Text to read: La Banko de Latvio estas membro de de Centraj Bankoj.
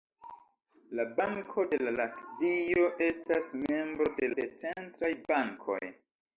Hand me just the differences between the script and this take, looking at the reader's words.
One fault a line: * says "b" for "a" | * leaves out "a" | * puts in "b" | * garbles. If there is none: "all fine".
all fine